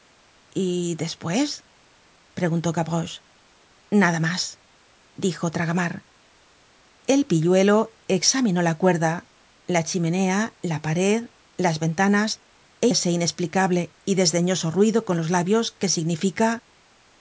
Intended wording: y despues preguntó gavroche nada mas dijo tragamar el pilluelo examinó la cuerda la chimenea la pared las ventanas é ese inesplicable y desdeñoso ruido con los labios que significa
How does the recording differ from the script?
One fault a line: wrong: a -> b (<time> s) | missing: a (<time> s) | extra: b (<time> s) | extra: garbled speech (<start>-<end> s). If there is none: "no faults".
no faults